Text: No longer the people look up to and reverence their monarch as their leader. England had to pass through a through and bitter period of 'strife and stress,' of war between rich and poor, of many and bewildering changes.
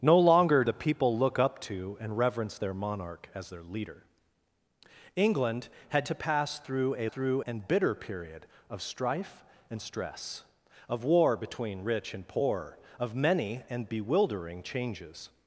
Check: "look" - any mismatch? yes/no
no